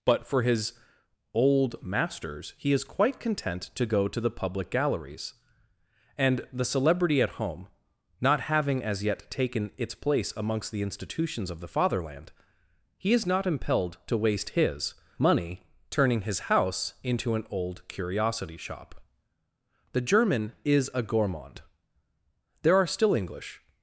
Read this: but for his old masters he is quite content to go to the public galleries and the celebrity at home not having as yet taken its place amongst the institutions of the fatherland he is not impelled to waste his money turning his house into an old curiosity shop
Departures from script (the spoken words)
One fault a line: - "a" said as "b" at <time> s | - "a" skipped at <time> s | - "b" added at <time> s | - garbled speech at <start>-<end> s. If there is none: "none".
- "the german is a gourmand there are still english" added at 19.9 s